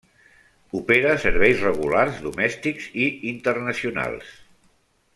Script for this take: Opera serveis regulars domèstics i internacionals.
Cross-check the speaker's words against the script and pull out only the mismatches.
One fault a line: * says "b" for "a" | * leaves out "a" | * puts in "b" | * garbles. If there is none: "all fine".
all fine